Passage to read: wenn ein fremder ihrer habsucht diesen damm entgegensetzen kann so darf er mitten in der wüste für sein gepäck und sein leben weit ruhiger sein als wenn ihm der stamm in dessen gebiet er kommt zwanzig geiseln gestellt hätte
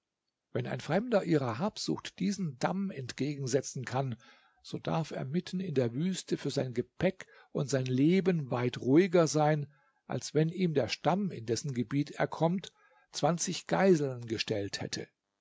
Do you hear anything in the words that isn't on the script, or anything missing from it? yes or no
no